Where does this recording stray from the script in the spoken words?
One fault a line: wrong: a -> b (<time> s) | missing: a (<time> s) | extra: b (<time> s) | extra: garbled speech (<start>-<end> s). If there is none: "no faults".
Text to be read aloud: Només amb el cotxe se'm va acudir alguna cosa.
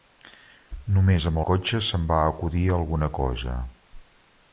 missing: el (1.4 s)